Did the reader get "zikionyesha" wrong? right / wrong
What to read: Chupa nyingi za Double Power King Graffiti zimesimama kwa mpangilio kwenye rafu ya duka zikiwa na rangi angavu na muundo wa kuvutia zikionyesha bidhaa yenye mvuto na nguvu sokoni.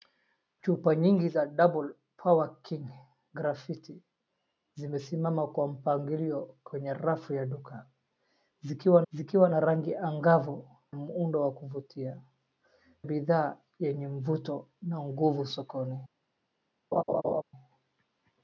wrong